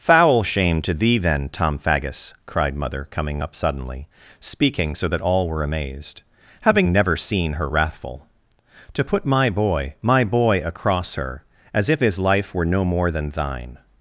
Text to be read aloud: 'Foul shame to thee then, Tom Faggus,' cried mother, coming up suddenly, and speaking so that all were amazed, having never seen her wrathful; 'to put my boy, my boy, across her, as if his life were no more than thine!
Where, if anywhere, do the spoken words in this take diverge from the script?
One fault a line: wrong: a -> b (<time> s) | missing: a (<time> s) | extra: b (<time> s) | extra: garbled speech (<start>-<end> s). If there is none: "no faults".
missing: and (4.1 s)